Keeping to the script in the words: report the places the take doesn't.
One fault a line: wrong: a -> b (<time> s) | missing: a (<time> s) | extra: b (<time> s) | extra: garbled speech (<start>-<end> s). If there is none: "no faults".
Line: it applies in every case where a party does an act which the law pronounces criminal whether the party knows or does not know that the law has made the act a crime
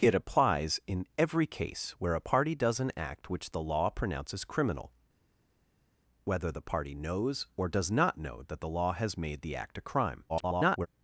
extra: garbled speech (10.3-10.9 s)